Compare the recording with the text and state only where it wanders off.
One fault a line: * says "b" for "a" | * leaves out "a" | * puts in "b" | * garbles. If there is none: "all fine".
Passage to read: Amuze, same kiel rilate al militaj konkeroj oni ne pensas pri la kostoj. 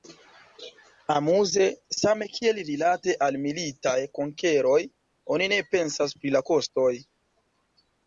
all fine